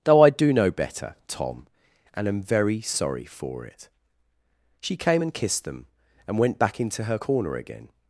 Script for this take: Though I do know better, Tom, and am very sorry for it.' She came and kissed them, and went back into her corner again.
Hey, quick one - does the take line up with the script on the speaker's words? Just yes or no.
yes